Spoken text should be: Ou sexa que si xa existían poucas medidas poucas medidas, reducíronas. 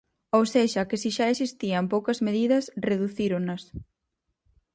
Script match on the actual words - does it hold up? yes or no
no